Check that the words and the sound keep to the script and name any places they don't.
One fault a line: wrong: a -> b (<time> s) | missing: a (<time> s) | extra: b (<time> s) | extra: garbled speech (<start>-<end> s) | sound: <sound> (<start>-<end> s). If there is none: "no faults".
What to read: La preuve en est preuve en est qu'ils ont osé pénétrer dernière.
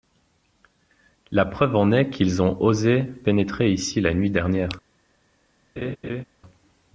missing: preuve en est (2.1 s)
extra: ici la nuit (3.7 s)
sound: laugh (5.8-6.2 s)